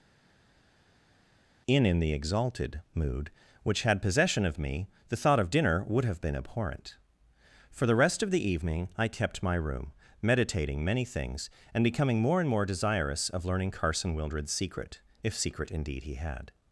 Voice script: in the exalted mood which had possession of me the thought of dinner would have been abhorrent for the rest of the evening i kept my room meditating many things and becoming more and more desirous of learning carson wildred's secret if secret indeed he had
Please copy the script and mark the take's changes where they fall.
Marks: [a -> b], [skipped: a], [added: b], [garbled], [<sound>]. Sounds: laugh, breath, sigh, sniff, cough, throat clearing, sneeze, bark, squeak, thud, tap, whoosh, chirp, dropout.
in [added: in] the exalted mood which had possession of me the thought of dinner would have been abhorrent for the rest of the evening i kept my room meditating many things and becoming more and more desirous of learning carson wildred's secret if secret indeed he had